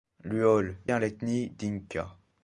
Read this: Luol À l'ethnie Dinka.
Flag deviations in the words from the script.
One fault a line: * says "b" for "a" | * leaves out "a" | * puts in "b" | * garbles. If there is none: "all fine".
all fine